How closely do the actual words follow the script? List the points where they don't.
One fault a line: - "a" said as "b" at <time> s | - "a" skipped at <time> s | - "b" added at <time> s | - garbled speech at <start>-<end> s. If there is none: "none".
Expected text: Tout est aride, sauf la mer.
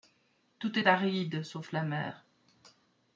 none